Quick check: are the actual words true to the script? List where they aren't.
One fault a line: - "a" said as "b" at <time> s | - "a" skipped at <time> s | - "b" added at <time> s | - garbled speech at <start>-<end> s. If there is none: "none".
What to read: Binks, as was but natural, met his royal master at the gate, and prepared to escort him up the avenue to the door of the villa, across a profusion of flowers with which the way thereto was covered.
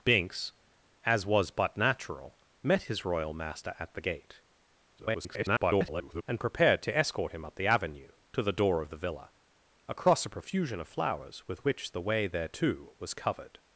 - garbled speech at 5.0-6.2 s